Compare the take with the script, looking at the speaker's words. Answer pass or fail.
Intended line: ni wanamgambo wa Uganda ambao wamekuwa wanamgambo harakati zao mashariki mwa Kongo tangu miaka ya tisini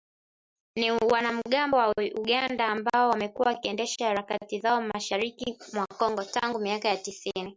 fail